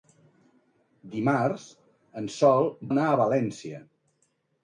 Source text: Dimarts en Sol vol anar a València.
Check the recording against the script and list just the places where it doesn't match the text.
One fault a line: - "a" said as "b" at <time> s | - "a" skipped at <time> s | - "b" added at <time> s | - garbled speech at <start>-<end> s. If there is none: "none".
- "vol" skipped at 2.7 s